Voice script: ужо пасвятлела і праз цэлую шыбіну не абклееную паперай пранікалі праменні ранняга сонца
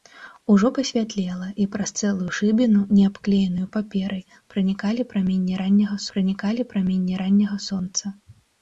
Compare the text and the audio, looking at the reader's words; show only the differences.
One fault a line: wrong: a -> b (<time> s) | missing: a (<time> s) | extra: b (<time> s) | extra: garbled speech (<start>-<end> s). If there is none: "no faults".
extra: пранікалі праменні ранняга (6.1 s)